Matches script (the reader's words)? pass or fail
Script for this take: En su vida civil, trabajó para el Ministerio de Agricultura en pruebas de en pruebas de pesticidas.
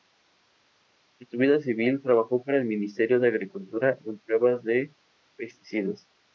fail